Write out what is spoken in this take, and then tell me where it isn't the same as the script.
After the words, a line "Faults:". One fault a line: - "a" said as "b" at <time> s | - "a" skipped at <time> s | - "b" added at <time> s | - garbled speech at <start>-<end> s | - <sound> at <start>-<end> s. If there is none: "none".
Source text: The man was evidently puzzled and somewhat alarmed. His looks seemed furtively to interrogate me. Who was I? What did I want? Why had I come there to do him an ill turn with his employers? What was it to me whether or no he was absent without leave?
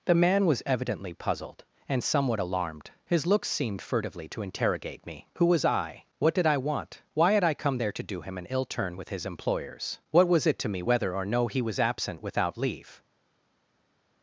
The man was evidently puzzled and somewhat alarmed. His looks seemed furtively to interrogate me. Who was I? What did I want? Why had I come there to do him an ill turn with his employers? What was it to me whether or no he was absent without leave?
Faults:
none